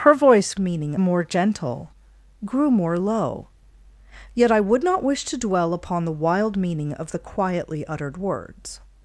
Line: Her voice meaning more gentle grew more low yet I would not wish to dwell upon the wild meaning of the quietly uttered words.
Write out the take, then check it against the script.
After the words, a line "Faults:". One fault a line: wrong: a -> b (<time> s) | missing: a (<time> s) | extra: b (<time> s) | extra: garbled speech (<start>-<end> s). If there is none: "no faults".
Her voice meaning more gentle grew more low yet I would not wish to dwell upon the wild meaning of the quietly uttered words.
Faults:
no faults